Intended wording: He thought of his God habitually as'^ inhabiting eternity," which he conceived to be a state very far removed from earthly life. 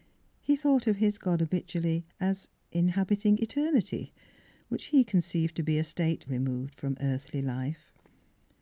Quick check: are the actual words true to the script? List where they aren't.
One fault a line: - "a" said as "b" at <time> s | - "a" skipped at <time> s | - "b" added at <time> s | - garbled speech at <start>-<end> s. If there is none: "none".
- "very far" skipped at 6.3 s